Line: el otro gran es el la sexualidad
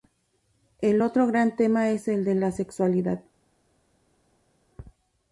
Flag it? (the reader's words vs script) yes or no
yes